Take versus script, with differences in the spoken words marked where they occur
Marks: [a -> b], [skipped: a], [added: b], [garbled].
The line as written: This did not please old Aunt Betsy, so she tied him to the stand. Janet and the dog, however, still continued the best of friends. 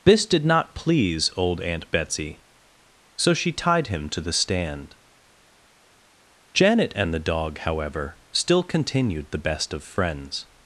This did not please old Aunt Betsy, so she tied him to the stand. Janet and the dog, however, still continued the best of friends.